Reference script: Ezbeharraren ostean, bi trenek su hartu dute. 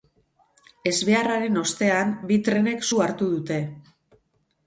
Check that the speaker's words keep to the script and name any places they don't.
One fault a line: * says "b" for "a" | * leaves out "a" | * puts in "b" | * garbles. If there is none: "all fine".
all fine